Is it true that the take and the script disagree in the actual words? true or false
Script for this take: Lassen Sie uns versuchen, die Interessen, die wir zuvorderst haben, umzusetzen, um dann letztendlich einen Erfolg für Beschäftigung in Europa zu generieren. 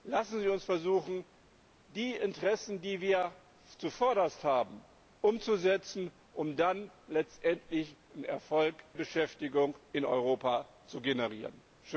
true